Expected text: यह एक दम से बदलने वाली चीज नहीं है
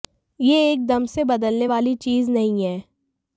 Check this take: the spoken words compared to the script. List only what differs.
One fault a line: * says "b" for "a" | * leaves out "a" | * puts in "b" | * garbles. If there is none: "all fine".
all fine